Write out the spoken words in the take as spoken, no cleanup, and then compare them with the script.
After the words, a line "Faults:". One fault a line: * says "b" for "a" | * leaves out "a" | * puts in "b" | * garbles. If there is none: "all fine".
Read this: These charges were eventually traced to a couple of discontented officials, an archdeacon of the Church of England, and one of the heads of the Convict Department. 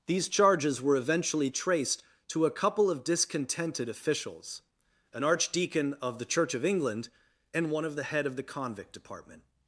These charges were eventually traced to a couple of discontented officials, an archdeacon of the Church of England, and one of the head of the Convict Department.
Faults:
* says "head" for "heads"